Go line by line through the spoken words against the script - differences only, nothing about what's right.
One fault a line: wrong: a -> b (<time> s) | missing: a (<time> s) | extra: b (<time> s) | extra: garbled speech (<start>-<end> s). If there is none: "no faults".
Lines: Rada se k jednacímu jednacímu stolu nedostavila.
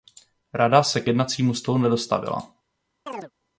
missing: jednacímu (1.5 s)